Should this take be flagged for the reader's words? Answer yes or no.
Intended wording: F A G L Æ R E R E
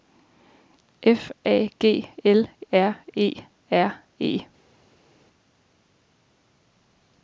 yes